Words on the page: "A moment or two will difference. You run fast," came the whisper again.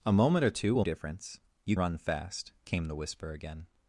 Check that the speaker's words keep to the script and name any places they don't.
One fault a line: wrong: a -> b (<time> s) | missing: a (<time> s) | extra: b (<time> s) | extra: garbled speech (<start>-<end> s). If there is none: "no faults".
no faults